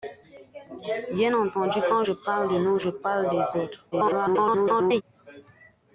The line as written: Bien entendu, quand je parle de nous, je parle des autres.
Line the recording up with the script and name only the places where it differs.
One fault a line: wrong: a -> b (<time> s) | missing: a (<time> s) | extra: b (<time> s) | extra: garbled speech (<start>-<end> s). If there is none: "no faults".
extra: garbled speech (3.9-5.0 s)